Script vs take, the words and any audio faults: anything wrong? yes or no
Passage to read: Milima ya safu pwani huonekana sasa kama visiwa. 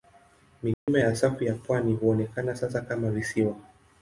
yes